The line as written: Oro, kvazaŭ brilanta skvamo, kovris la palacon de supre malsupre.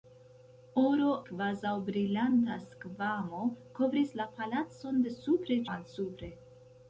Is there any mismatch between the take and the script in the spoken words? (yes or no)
no